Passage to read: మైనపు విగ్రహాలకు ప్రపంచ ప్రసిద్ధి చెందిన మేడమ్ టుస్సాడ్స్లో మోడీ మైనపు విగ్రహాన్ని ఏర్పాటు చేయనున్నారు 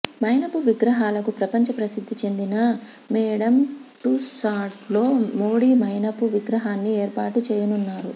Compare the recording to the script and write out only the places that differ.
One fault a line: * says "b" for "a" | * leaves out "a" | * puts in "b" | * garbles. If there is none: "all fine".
all fine